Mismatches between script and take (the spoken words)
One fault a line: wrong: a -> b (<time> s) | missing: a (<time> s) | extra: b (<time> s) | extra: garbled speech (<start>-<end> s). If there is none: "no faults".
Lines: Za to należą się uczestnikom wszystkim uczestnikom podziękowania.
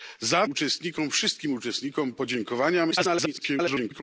missing: to należą się (0.5 s)
extra: garbled speech (2.9-4.0 s)